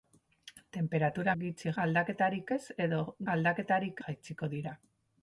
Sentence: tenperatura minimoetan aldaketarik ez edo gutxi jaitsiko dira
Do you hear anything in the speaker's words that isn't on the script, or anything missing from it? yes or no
yes